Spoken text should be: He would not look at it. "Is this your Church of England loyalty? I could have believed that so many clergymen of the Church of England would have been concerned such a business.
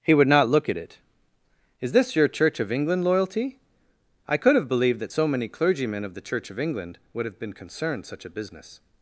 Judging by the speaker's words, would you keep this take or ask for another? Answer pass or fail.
pass